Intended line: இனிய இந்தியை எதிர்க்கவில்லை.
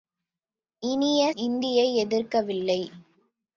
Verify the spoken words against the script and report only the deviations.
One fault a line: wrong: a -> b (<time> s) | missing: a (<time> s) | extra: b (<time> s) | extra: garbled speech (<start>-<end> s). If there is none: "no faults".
no faults